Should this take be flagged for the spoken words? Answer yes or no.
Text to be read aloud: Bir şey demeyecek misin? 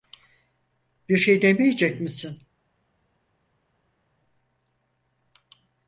no